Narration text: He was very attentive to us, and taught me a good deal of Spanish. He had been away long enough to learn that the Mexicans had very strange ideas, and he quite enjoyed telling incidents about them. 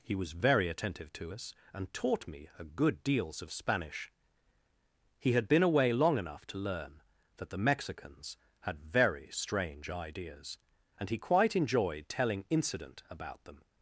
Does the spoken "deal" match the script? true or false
false